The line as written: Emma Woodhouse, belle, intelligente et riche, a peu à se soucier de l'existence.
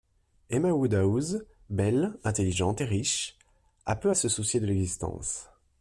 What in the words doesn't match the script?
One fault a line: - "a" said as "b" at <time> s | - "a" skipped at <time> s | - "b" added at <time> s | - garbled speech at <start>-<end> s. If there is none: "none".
none